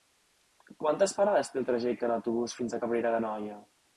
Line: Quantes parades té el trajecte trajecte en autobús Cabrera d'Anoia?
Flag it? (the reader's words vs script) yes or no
yes